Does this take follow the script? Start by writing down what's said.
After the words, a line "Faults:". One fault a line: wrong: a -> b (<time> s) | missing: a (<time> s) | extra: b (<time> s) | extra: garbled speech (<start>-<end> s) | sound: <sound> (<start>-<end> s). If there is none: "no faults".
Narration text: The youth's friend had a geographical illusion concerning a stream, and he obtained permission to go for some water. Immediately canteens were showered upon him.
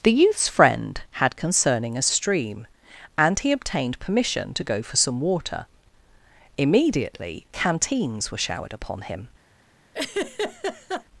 The youth's friend had concerning a stream, and he obtained permission to go for some water. Immediately canteens were showered upon him.
Faults:
missing: a geographical illusion (1.4 s)
sound: laugh (9.9-11.0 s)